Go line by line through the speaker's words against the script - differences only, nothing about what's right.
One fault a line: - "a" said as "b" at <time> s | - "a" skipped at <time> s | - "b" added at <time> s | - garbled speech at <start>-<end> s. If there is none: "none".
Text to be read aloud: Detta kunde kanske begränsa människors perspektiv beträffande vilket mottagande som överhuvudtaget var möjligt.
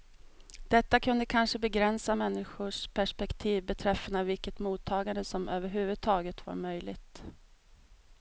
none